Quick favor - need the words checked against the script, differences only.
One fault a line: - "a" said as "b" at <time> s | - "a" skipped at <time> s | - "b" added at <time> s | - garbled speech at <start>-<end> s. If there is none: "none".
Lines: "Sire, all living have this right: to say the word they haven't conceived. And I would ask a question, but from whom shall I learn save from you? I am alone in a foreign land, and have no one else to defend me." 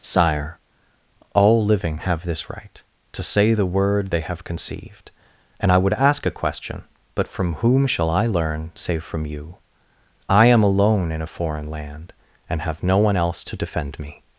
- "haven't" said as "have" at 4.2 s